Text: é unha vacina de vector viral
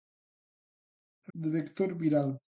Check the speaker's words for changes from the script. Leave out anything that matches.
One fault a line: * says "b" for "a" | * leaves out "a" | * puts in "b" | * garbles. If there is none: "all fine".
* leaves out "unha vacina"